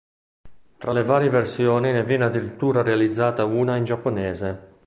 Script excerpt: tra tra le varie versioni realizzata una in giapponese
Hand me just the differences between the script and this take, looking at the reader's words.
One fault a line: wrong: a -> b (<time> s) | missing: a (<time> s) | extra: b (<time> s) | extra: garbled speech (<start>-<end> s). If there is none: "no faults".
missing: tra (0.9 s)
extra: ne viene addirittura (1.9 s)